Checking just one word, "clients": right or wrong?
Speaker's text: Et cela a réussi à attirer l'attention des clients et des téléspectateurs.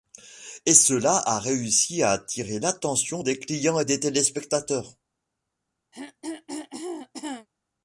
right